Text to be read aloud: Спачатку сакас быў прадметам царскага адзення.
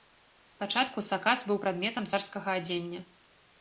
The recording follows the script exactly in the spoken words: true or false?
true